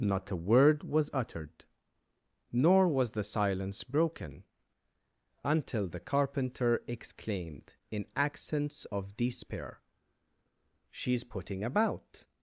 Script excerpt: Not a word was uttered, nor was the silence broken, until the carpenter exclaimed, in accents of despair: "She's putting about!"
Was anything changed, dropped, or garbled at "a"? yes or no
no